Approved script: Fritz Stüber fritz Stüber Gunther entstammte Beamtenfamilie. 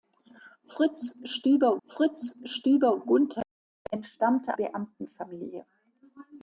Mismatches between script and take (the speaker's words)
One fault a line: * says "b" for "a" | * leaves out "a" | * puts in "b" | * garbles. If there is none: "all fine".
all fine